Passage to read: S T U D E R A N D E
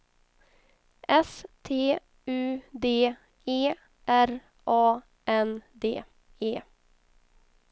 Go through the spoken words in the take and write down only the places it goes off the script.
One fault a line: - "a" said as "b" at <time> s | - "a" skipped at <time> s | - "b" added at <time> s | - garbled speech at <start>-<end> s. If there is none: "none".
none